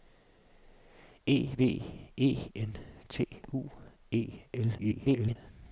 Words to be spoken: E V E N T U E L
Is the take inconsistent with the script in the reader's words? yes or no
yes